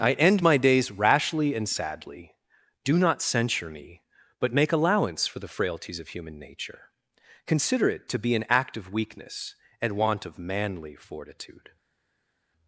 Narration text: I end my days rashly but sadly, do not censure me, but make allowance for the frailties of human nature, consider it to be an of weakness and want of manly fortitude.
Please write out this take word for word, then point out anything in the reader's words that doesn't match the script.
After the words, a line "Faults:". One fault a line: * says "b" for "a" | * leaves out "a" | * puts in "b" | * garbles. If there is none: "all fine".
I end my days rashly and sadly, do not censure me, but make allowance for the frailties of human nature, consider it to be an act of weakness and want of manly fortitude.
Faults:
* says "and" for "but"
* puts in "act"